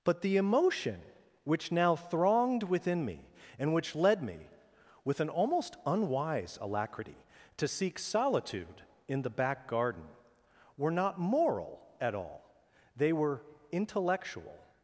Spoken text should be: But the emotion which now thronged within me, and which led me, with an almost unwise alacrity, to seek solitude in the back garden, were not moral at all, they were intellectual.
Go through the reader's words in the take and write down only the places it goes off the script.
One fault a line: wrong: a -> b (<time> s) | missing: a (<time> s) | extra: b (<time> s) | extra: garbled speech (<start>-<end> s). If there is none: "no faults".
no faults